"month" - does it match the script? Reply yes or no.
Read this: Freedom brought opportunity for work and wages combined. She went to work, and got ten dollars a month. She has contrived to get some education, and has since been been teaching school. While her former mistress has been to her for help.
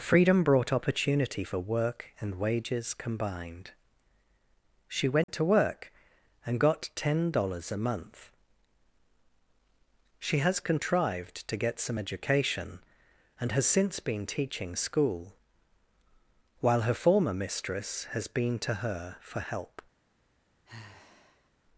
yes